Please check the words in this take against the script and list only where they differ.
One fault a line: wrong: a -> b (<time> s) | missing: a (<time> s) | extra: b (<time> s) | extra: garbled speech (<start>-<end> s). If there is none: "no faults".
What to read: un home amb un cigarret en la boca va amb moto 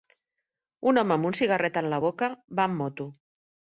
no faults